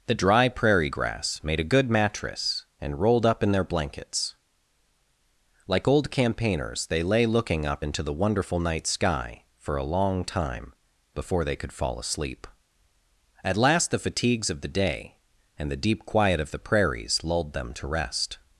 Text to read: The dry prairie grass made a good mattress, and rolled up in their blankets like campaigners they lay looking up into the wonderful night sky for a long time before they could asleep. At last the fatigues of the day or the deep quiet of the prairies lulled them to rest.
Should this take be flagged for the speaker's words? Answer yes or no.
yes